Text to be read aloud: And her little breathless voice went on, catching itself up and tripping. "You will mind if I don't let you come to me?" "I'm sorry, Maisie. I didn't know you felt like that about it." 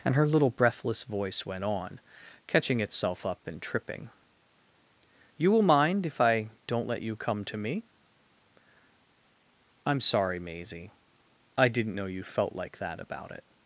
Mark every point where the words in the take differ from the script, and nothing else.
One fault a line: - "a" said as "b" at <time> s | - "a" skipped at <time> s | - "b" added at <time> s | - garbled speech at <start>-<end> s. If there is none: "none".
none